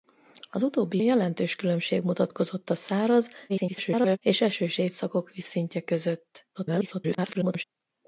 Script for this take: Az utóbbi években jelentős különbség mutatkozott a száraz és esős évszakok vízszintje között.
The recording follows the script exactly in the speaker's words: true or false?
false